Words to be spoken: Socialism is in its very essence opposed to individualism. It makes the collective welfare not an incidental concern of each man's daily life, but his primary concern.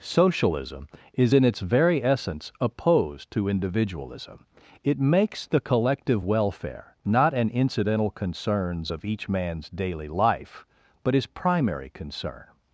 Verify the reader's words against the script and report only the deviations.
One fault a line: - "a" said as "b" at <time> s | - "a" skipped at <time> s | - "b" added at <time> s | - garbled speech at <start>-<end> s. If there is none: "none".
- "concern" said as "concerns" at 8.1 s